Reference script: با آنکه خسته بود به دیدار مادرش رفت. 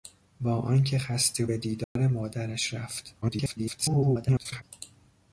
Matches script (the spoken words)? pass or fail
fail